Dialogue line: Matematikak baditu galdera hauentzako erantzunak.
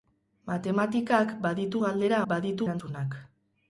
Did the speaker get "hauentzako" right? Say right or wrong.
wrong